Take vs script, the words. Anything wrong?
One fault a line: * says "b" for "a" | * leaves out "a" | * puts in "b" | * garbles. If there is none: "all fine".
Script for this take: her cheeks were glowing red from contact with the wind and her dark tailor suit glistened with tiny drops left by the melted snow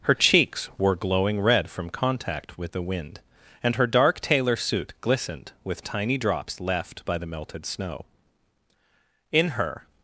* puts in "in her"